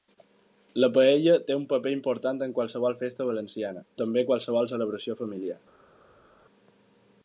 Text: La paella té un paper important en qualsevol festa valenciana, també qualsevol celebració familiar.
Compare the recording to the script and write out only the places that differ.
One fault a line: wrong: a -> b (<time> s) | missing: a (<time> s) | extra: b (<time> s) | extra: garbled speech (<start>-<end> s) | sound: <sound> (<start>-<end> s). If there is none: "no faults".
no faults